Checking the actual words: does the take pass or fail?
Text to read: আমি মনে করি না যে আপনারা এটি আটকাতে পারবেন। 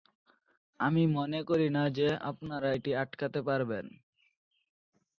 pass